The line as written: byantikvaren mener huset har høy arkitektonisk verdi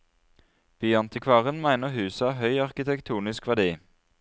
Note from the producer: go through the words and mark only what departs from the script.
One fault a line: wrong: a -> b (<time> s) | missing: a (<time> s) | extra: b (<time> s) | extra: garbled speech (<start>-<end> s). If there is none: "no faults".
no faults